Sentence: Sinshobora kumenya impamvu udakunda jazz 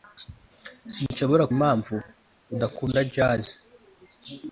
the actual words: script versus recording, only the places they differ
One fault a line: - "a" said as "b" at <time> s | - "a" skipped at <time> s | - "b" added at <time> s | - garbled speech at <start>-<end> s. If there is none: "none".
- "kumenya" skipped at 1.4 s